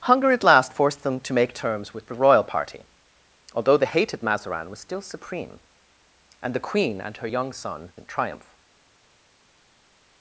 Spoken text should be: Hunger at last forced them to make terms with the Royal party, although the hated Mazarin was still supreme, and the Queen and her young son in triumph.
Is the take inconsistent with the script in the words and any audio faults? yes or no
no